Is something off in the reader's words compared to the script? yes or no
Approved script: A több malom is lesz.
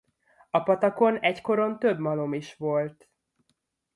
yes